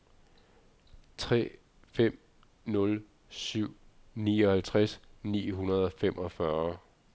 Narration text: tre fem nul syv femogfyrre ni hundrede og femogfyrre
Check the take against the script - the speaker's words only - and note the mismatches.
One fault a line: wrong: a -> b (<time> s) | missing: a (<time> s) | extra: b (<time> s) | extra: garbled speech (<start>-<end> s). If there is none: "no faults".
wrong: femogfyrre -> nioghalvtreds (4.1 s)